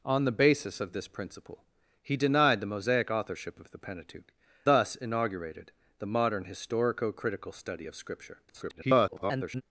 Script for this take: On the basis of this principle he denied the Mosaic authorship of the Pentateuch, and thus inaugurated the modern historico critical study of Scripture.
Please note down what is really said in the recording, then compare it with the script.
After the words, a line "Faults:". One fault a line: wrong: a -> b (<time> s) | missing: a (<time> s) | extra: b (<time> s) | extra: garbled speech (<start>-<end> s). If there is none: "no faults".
On the basis of this principle he denied the Mosaic authorship of the Pentateuch, thus inaugurated the modern historico critical study of Scripture. [garbled]
Faults:
missing: and (4.3 s)
extra: garbled speech (8.5-9.6 s)